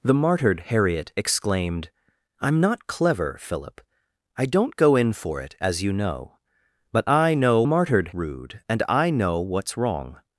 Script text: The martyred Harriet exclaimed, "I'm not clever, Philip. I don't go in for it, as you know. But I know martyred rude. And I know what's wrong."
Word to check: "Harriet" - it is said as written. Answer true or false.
true